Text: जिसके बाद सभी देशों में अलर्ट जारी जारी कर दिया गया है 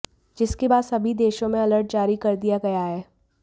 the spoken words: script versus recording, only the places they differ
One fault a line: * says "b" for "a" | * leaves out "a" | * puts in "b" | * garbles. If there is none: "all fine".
* leaves out "जारी"